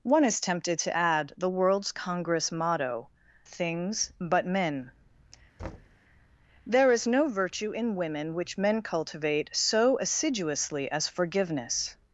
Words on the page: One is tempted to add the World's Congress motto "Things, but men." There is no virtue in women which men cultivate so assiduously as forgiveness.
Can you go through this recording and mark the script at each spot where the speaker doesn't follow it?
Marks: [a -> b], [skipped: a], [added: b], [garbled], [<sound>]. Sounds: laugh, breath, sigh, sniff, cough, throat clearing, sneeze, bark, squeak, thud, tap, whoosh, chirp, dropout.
One is tempted to add the World's Congress motto "Things, but men." [thud] There is no virtue in women which men cultivate so assiduously as forgiveness.